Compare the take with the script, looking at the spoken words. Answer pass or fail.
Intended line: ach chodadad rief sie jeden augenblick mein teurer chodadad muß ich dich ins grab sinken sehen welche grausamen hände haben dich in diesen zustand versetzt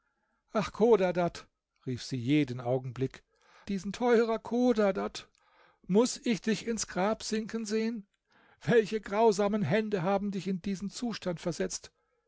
fail